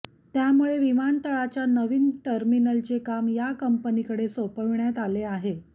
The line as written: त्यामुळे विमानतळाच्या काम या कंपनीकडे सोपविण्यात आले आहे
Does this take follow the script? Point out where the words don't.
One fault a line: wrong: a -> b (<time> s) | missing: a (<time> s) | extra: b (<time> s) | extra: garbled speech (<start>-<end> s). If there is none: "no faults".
extra: नवीन टर्मिनलचे (1.7 s)